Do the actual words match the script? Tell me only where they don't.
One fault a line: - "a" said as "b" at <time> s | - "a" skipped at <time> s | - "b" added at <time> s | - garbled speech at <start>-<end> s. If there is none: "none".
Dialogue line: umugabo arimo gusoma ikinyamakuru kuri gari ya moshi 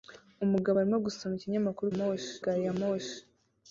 - "kuri" said as "moshi" at 2.0 s